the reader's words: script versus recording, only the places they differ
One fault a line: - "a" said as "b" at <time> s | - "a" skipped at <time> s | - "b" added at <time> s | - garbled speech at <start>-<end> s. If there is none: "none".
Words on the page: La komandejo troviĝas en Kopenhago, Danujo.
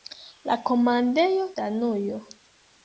- "troviĝas en Kopenhago" skipped at 1.5 s